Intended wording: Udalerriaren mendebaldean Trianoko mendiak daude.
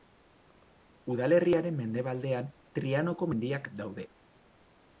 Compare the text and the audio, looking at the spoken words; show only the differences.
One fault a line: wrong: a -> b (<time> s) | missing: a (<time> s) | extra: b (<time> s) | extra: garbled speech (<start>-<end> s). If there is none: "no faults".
no faults